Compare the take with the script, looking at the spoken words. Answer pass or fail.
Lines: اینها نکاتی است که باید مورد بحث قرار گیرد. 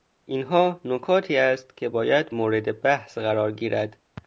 pass